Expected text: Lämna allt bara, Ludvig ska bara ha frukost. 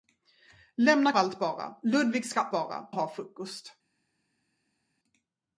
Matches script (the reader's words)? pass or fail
pass